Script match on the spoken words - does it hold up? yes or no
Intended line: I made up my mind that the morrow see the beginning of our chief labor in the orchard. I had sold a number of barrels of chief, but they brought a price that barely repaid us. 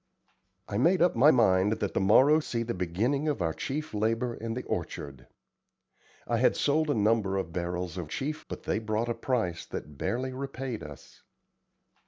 yes